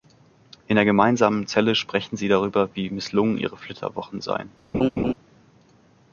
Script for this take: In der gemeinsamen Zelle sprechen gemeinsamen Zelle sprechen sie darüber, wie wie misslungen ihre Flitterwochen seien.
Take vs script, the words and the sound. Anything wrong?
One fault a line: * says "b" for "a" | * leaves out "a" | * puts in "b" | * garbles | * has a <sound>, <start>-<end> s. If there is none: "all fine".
* leaves out "gemeinsamen Zelle sprechen"
* leaves out "wie"
* has a laugh, 4.7-5.1 s